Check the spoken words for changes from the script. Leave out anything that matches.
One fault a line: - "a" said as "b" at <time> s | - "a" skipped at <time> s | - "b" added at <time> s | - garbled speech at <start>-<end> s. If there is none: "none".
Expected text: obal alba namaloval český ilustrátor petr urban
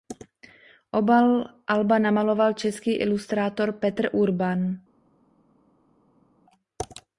none